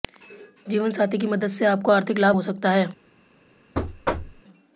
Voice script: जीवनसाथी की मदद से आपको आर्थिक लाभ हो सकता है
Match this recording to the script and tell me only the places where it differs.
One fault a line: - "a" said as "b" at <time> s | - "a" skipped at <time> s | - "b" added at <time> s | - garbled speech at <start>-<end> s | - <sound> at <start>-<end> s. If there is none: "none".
- thud at 3.7-4.4 s